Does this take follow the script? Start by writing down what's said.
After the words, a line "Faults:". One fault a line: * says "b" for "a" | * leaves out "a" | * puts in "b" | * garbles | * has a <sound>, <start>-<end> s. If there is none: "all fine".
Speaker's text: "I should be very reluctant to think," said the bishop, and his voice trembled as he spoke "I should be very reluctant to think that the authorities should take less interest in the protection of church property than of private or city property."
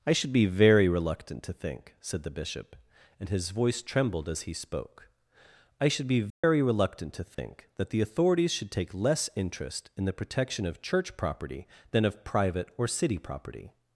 "I should be very reluctant to think," said the bishop, and his voice trembled as he spoke "I should be very reluctant to think that the authorities should take less interest in the protection of church property than of private or city property."
Faults:
* has a dropout, 6.3-6.4 s
* has a dropout, 7.3-7.4 s